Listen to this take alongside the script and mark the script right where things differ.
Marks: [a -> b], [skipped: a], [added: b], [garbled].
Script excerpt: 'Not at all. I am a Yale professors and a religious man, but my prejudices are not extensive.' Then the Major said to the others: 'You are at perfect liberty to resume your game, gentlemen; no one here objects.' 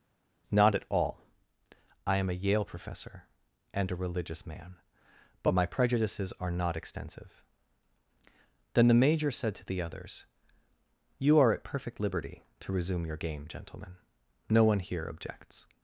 'Not at all. I am a Yale [professors -> professor] and a religious man, but my prejudices are not extensive.' Then the Major said to the others: 'You are at perfect liberty to resume your game, gentlemen; no one here objects.'